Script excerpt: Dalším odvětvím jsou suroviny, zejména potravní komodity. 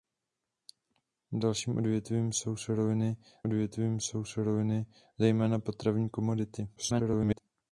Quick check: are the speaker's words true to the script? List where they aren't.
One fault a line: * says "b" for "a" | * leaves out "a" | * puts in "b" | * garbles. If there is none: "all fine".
* puts in "odvětvím jsou suroviny"
* garbles